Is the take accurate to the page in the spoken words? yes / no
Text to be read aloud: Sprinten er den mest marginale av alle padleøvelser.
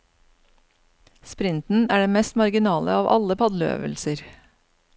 yes